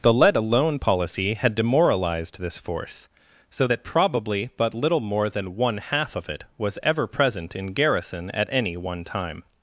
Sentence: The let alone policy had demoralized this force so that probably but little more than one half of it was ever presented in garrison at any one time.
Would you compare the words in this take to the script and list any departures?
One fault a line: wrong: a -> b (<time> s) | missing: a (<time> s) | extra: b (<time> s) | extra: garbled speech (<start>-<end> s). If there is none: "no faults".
wrong: presented -> present (7.1 s)